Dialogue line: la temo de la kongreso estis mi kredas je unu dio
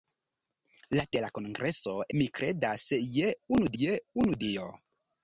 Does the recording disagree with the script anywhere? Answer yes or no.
yes